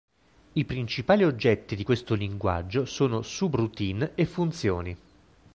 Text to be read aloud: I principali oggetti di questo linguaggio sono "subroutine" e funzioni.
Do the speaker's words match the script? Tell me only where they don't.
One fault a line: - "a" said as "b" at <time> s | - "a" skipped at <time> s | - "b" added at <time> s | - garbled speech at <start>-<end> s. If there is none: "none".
none